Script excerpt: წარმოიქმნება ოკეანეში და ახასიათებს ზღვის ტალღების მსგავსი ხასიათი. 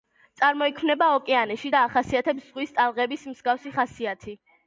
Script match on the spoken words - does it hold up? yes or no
yes